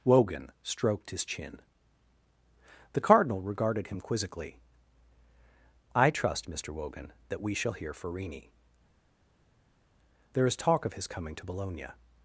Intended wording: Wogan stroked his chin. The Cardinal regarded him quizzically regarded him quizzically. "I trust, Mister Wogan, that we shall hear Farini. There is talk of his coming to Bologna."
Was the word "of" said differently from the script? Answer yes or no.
no